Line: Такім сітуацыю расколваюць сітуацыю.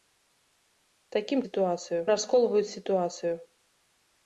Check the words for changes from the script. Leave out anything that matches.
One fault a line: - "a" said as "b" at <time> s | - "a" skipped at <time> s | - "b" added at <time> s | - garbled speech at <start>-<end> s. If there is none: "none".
none